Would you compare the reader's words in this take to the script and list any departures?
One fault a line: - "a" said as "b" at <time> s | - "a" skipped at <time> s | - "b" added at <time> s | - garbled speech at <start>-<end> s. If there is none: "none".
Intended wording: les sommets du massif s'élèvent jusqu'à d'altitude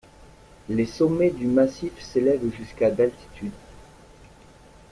none